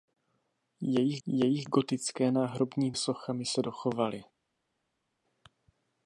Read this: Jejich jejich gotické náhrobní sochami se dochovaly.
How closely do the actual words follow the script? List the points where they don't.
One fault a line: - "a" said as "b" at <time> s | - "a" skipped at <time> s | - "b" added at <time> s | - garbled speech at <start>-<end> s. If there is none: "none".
none